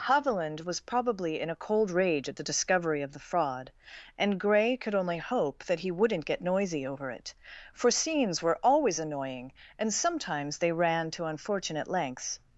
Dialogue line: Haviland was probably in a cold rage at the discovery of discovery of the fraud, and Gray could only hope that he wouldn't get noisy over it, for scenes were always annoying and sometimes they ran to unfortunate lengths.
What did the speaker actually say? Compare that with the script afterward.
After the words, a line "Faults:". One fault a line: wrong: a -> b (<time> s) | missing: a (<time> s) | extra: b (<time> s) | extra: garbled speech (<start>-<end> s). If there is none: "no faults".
Haviland was probably in a cold rage at the discovery of the fraud, and Gray could only hope that he wouldn't get noisy over it, for scenes were always annoying and sometimes they ran to unfortunate lengths.
Faults:
missing: discovery of (3.1 s)